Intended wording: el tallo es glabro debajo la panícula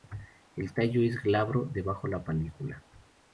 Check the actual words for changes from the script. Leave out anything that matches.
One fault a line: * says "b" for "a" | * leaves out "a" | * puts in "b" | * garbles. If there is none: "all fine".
all fine